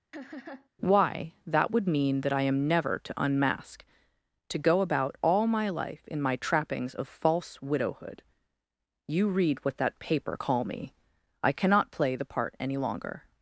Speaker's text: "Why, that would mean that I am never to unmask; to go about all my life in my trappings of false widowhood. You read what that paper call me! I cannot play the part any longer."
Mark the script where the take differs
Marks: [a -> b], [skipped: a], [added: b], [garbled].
"Why, that would mean that I am never to unmask; to go about all my life in my trappings of false widowhood. You read what that paper call me! I cannot play the part any longer."